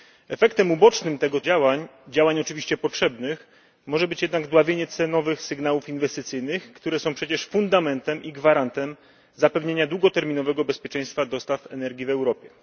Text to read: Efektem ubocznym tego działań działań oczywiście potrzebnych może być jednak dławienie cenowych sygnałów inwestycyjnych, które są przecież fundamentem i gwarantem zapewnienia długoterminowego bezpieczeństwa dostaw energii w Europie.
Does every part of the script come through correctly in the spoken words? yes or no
yes